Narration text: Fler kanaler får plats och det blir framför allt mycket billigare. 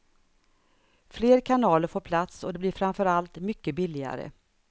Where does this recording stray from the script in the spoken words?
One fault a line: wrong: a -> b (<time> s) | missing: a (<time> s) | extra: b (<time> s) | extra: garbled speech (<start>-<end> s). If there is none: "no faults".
no faults